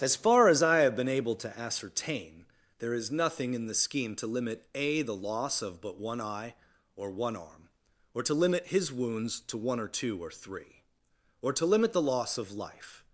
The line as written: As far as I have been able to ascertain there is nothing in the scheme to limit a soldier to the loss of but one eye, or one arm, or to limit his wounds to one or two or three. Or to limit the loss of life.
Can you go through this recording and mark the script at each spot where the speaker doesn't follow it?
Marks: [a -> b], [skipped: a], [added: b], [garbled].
As far as I have been able to ascertain there is nothing in the scheme to limit a [skipped: soldier to] the loss of but one eye, or one arm, or to limit his wounds to one or two or three. Or to limit the loss of life.